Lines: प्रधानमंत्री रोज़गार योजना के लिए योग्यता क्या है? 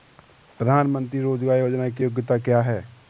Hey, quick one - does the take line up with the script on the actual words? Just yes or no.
no